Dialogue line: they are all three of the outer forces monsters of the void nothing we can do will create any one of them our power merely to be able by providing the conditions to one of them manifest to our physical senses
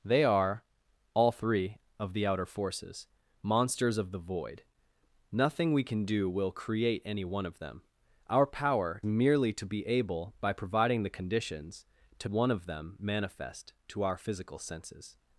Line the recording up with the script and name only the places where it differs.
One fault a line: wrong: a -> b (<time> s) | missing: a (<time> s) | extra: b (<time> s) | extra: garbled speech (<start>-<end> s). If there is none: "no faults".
no faults